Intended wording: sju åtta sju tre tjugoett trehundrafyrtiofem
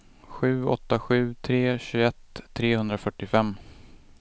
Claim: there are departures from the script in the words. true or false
false